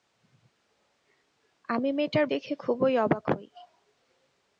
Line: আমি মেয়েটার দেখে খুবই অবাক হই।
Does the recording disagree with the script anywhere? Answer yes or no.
no